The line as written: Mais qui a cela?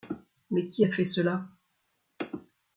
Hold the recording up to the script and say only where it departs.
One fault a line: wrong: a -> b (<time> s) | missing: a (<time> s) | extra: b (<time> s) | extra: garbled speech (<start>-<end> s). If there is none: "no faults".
extra: fait (0.9 s)